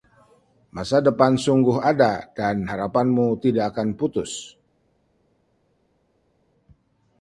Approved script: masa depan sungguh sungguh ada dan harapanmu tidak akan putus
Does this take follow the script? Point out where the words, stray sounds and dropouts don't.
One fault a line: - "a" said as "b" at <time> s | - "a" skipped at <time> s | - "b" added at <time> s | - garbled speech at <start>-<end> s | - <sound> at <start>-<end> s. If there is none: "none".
- "sungguh" skipped at 1.8 s